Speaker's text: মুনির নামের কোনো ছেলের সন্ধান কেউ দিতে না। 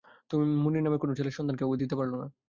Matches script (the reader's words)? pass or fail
fail